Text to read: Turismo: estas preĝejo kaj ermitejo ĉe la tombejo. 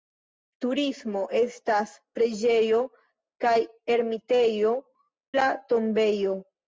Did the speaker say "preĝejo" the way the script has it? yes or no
yes